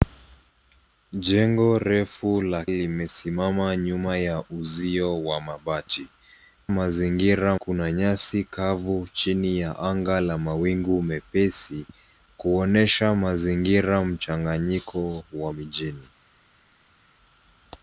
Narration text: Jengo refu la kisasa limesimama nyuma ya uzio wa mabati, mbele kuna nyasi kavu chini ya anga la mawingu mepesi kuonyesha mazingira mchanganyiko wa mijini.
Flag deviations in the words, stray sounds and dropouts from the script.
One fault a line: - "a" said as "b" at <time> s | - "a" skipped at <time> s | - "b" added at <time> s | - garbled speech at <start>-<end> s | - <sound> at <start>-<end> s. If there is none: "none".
- "kisasa" skipped at 2.6 s
- "mbele" said as "mazingira" at 6.7 s